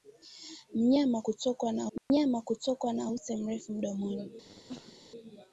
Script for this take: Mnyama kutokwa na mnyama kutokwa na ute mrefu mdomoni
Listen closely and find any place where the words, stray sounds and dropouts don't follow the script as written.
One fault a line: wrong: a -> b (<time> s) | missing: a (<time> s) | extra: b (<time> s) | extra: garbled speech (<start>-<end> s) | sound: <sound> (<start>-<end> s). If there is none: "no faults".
sound: dropout (2.0-2.1 s)
sound: cough (4.4-5.0 s)